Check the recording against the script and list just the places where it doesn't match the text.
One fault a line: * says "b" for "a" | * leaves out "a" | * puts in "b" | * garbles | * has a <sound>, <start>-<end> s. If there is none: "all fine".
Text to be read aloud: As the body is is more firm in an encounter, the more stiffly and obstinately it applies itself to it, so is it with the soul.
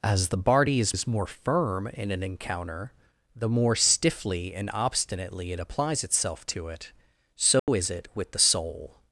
* has a dropout, 7.6-7.7 s